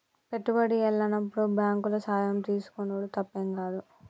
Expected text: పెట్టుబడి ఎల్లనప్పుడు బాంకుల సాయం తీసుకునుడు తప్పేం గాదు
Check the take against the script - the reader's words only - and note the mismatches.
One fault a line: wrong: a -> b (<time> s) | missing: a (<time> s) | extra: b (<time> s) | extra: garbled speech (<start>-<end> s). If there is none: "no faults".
no faults